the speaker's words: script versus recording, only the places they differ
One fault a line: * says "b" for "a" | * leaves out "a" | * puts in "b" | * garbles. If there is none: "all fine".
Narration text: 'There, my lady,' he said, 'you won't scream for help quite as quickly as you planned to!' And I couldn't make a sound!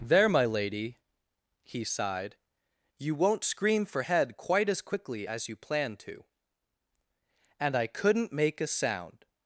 * says "sighed" for "said"
* says "head" for "help"